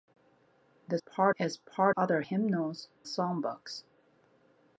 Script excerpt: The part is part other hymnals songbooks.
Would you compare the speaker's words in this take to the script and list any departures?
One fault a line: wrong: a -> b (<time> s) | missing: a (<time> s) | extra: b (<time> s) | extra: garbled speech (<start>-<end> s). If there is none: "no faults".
no faults